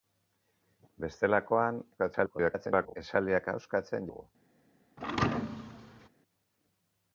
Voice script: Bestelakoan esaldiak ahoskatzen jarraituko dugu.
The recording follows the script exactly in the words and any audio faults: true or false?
false